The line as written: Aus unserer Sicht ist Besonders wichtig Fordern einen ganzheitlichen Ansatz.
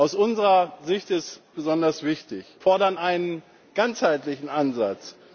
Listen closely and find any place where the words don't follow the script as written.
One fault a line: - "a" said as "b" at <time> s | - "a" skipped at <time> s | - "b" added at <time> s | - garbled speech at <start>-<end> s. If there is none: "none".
none